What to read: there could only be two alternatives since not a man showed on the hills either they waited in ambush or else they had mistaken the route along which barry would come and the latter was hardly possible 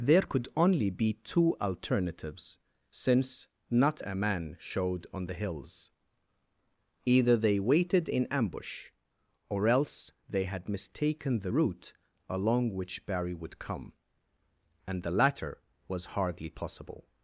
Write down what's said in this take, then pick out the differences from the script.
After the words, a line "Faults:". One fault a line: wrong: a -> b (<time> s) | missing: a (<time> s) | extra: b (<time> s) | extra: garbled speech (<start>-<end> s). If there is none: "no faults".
there could only be two alternatives since not a man showed on the hills either they waited in ambush or else they had mistaken the route along which barry would come and the latter was hardly possible
Faults:
no faults